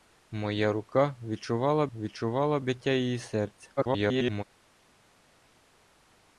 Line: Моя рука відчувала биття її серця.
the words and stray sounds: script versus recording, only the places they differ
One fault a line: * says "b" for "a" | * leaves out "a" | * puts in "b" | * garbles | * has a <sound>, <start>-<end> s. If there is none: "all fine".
* puts in "відчувала"
* garbles